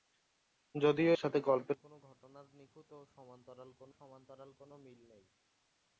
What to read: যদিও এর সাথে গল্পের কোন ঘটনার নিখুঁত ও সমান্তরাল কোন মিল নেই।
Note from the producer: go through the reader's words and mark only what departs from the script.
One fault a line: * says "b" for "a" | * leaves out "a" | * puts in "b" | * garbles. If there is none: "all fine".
* leaves out "এর"
* puts in "সমান্তরাল কোন"